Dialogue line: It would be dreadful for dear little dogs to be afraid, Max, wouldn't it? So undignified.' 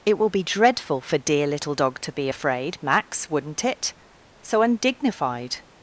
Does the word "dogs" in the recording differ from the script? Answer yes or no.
yes